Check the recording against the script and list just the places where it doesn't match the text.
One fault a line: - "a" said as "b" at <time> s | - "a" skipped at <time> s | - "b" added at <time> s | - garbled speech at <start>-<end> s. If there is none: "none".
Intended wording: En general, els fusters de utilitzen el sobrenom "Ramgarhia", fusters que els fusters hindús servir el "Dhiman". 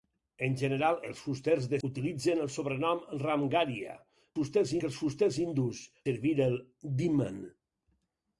none